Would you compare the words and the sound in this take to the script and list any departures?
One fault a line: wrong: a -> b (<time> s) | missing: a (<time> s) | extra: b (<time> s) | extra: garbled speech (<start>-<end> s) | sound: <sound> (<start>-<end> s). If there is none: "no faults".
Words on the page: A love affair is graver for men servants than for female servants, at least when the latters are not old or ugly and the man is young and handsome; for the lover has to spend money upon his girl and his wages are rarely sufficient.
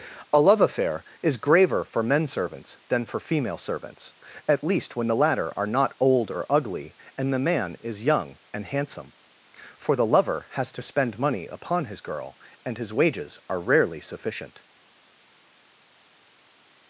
wrong: latters -> latter (5.2 s)